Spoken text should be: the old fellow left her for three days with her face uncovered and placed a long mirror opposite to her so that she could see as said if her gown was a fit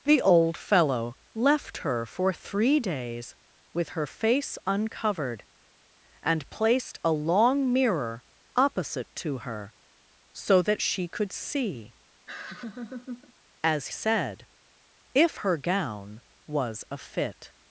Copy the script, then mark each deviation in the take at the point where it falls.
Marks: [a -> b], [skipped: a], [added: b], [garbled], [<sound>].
the old fellow left her for three days with her face uncovered and placed a long mirror opposite to her so that she could see [laugh] as said if her gown was a fit